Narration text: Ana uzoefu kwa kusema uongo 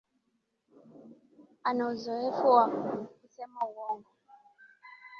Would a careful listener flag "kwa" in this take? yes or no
yes